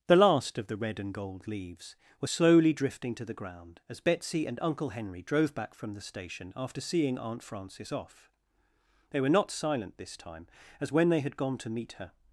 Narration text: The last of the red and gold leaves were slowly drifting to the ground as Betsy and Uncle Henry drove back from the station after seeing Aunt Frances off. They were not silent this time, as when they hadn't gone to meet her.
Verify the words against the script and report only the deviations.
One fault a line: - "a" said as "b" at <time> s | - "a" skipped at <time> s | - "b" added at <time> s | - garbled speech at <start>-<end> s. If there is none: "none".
- "hadn't" said as "had" at 11.2 s